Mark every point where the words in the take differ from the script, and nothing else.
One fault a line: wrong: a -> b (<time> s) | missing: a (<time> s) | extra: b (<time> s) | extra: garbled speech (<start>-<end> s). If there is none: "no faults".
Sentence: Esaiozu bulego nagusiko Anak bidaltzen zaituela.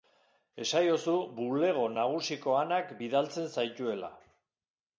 no faults